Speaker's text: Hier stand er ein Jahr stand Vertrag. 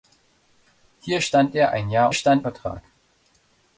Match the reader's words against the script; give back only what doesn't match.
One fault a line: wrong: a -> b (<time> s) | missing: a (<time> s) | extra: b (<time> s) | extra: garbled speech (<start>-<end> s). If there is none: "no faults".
no faults